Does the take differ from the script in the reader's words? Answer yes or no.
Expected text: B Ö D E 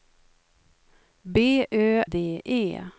no